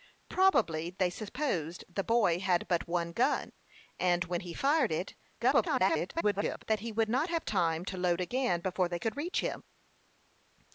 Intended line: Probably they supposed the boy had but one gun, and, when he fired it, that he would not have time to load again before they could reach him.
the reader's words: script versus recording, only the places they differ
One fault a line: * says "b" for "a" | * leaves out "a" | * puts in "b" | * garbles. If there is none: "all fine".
* garbles